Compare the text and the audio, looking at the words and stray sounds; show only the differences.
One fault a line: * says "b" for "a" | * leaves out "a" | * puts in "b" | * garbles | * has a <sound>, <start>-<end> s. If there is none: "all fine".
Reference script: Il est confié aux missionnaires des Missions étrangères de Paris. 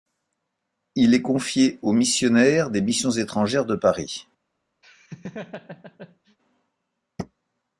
* has a laugh, 4.8-6.4 s